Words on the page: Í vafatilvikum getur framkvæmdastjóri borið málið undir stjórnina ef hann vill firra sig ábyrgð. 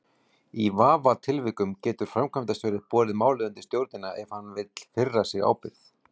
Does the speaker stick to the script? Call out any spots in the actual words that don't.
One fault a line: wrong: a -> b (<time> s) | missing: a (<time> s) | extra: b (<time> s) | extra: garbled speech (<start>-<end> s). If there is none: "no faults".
no faults